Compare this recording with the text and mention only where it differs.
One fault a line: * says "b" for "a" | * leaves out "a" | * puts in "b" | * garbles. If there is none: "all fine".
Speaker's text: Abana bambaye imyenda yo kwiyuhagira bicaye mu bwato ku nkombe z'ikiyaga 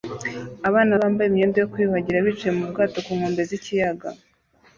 all fine